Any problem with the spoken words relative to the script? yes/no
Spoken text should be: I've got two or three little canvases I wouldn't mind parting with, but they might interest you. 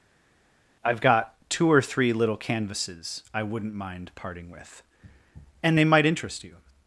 yes